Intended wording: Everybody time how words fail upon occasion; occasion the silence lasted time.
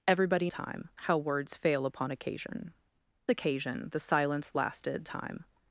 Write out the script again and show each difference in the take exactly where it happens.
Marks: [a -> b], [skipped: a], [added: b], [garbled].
Everybody time how words fail upon occasion; occasion the silence lasted time.